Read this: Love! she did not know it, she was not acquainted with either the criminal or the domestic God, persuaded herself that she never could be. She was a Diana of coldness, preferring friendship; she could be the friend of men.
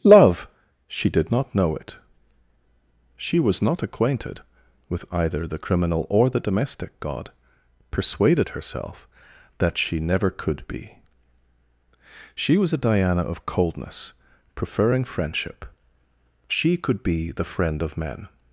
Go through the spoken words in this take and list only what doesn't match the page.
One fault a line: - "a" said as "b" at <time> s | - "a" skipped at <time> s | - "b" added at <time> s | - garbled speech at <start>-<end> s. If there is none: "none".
none